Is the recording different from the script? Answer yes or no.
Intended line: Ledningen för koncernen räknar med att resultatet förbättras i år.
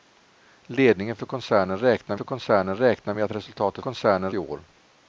yes